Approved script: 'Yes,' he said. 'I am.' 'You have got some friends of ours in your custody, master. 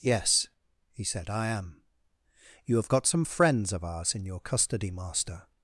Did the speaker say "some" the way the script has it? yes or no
yes